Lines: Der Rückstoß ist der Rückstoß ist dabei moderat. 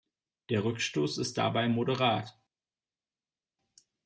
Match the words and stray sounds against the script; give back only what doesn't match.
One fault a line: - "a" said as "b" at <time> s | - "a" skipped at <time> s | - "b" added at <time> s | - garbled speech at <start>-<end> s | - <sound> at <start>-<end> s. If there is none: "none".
- "der Rückstoß ist" skipped at 1.4 s